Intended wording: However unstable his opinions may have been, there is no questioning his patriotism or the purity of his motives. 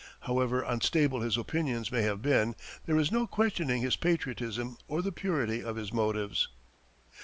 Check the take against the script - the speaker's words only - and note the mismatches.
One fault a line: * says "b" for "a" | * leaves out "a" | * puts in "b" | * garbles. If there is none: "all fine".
all fine